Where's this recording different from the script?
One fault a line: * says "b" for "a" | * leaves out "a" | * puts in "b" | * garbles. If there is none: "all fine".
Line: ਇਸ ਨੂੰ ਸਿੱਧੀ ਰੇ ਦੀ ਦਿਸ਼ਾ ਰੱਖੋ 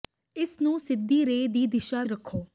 all fine